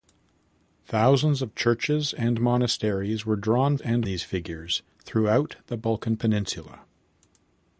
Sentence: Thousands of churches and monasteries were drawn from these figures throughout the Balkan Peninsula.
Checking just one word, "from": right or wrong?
wrong